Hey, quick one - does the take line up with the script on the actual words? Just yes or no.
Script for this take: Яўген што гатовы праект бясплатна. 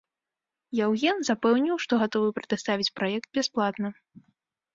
no